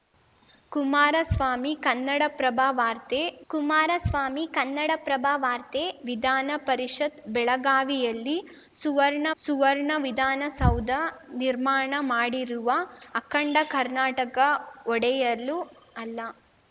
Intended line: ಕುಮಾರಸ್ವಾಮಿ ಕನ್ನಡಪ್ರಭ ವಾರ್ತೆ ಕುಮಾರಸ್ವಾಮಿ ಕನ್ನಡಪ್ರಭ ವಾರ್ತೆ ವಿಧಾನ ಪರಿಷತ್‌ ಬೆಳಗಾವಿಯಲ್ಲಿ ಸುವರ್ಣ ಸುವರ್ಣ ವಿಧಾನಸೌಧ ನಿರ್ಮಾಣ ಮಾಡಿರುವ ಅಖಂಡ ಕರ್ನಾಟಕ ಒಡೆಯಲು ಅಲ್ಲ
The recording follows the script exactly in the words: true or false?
true